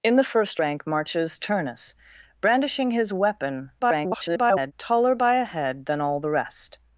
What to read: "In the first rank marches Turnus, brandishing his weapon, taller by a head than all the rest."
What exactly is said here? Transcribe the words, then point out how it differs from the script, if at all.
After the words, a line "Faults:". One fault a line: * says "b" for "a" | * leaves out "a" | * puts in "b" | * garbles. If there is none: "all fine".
"In the first rank marches Turnus, brandishing his weapon, [garbled] taller by a head than all the rest."
Faults:
* garbles